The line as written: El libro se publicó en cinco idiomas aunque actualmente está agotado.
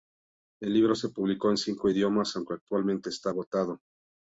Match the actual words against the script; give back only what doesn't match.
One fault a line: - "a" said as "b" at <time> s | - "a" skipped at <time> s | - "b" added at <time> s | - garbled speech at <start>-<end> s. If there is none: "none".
none